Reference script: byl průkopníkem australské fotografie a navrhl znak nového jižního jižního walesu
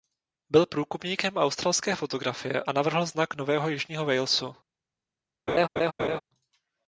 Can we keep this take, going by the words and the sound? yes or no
no